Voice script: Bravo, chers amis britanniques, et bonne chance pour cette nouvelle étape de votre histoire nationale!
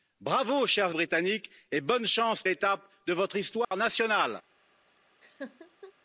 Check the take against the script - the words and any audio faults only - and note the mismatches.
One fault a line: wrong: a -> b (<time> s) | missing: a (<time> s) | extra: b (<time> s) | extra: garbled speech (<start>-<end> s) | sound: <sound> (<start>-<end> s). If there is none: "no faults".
missing: amis (0.9 s)
missing: pour cette nouvelle (2.4 s)
sound: dropout (3.6-3.7 s)
sound: laugh (5.2-5.9 s)